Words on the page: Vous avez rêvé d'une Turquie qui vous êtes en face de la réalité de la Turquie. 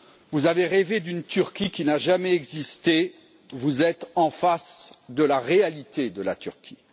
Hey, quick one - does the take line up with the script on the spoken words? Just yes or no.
no